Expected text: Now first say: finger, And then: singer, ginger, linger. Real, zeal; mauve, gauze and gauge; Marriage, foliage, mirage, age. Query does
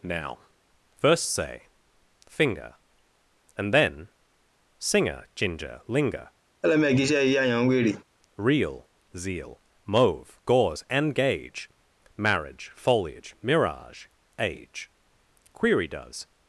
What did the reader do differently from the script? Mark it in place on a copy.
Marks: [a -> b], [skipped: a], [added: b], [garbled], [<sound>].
Now first say: finger, And then: singer, ginger, linger. [laugh] Real, zeal; mauve, gauze and gauge; Marriage, foliage, mirage, age. Query does